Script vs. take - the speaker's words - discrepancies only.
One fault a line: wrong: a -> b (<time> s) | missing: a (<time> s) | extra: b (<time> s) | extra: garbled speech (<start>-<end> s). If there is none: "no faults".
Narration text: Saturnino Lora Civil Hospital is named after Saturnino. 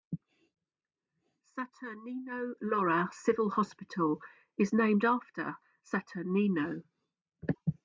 no faults